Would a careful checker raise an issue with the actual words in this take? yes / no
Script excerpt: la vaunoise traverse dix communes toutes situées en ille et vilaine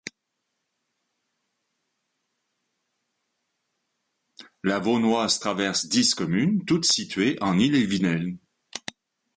no